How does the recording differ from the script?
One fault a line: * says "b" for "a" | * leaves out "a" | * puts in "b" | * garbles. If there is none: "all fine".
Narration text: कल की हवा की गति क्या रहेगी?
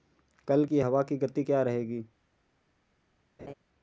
all fine